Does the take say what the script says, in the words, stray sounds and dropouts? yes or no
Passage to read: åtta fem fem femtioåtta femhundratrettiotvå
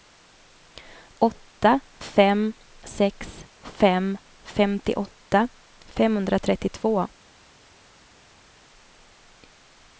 no